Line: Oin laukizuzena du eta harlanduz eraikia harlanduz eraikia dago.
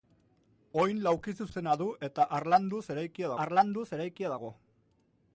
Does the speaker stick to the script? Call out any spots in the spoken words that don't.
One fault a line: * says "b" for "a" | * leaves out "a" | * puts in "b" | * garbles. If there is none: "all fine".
all fine